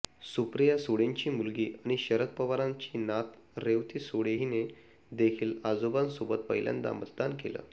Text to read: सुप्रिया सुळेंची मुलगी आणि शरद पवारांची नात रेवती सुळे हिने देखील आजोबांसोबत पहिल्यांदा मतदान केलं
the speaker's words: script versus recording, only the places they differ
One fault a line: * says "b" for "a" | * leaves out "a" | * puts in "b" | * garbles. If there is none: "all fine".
all fine